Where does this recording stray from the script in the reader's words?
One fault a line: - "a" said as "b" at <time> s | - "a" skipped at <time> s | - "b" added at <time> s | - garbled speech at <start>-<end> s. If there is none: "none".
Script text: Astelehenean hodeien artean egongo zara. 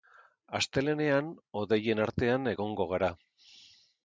- "zara" said as "gara" at 3.0 s